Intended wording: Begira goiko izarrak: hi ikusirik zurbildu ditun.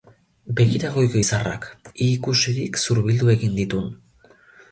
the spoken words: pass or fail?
fail